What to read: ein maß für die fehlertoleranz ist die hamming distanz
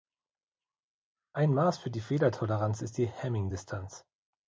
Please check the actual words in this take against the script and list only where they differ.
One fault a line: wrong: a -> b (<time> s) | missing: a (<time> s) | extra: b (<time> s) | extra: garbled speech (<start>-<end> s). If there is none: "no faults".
no faults